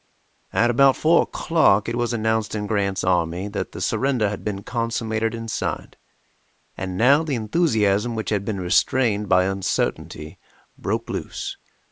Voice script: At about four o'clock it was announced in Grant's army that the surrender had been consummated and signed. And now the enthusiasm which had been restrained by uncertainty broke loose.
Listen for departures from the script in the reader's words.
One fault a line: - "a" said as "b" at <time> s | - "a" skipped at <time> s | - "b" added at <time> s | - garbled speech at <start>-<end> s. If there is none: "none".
none